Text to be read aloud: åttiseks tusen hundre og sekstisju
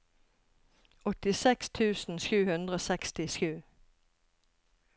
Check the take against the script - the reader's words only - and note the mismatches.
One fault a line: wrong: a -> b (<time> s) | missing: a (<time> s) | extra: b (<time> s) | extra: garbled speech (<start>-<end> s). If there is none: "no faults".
extra: sju (2.2 s)